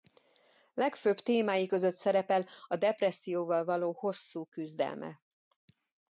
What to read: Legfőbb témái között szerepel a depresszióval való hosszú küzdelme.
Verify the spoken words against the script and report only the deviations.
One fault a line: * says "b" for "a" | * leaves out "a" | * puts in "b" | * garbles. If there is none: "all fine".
all fine